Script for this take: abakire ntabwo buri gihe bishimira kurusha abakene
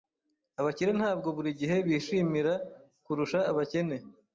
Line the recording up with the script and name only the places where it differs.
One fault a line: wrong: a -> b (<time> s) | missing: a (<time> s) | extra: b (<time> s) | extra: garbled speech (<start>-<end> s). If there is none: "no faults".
no faults